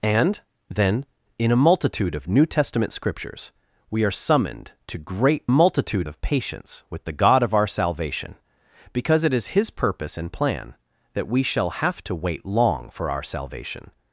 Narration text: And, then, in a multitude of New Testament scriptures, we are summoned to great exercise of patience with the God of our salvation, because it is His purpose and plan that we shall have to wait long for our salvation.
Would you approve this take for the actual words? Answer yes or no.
no